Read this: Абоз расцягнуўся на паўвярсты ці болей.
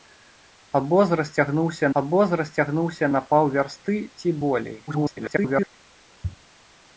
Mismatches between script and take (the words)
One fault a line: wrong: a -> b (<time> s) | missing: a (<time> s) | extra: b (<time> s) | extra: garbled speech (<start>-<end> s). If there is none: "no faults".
extra: абоз расцягнуўся (2.0 s)
extra: garbled speech (4.9-5.7 s)